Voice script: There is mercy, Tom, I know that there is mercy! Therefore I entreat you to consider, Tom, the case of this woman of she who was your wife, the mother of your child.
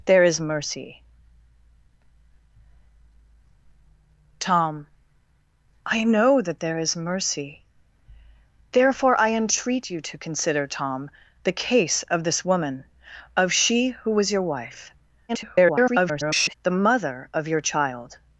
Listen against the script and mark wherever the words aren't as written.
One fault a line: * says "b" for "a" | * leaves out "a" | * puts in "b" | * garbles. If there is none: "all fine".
* garbles